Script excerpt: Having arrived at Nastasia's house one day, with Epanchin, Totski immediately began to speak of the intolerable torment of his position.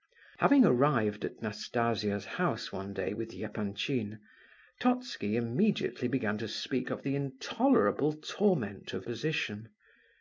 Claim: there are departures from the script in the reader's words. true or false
true